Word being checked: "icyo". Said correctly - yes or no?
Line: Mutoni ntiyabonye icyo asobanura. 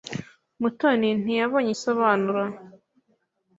no